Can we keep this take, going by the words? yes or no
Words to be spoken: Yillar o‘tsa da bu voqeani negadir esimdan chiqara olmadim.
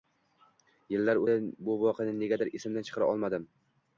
no